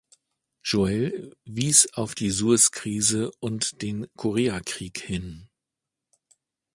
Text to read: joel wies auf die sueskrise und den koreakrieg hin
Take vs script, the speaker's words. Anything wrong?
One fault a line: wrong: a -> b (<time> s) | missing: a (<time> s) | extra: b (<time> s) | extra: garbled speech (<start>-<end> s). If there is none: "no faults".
no faults